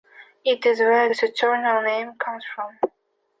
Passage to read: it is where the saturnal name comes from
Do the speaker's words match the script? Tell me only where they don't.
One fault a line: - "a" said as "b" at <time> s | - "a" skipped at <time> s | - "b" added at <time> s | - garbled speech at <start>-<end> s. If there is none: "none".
none